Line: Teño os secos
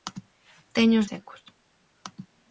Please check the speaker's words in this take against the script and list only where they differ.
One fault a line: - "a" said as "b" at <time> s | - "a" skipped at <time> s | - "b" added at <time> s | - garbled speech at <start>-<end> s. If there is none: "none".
none